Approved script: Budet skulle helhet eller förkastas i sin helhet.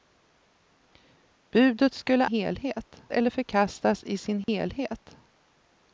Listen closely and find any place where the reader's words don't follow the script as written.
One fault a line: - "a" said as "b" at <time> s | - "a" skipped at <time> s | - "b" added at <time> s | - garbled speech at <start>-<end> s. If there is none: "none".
none